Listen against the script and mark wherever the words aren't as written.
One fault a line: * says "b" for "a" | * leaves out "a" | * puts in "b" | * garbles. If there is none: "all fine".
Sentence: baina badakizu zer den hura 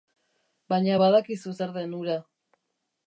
all fine